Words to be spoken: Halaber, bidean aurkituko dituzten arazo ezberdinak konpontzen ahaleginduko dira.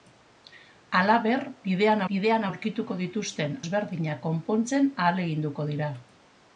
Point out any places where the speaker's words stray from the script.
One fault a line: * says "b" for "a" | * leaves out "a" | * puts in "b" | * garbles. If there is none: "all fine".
* puts in "bidean"
* leaves out "arazo"